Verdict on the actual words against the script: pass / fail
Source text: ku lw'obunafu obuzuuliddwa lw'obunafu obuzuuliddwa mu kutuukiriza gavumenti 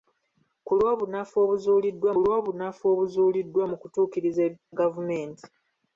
pass